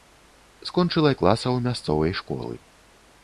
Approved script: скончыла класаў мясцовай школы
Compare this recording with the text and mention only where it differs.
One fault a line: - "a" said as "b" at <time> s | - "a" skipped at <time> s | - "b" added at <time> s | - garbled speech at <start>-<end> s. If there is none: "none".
none